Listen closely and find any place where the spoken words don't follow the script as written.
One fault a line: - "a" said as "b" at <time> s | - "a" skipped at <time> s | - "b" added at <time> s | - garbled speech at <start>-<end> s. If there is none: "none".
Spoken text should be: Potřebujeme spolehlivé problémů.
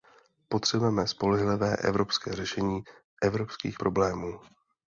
- "evropské řešení evropských" added at 1.8 s